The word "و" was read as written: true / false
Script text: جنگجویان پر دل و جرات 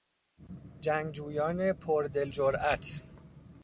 false